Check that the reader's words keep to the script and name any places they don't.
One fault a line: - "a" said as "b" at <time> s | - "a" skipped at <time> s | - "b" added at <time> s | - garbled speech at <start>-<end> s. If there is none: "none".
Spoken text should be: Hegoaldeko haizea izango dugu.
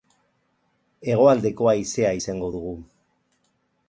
none